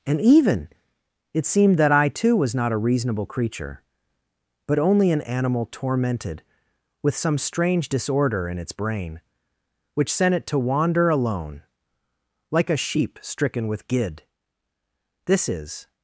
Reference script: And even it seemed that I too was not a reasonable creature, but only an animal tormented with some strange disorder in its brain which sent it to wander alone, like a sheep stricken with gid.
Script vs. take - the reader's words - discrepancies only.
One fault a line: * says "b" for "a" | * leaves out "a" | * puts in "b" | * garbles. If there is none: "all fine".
* puts in "This is"